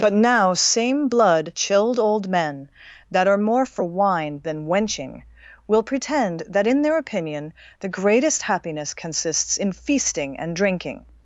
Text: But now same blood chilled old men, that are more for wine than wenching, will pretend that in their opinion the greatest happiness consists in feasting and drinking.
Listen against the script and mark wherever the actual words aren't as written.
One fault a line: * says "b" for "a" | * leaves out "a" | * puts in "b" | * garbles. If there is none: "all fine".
all fine